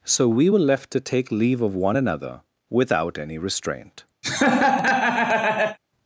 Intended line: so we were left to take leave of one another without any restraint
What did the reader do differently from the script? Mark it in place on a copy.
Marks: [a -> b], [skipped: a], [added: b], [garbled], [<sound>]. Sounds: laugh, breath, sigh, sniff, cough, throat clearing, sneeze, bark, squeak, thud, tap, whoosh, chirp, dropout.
so we were left to take leave of one another without any restraint [laugh]